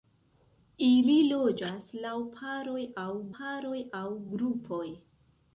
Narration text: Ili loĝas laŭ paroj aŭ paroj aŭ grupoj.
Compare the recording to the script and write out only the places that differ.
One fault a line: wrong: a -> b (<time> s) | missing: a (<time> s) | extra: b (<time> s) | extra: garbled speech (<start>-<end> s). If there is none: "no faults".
no faults